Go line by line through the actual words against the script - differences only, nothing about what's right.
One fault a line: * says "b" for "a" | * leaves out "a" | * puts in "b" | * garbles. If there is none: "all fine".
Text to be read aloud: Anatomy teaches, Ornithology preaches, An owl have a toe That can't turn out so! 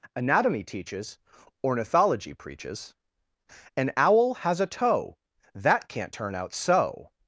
* says "has" for "have"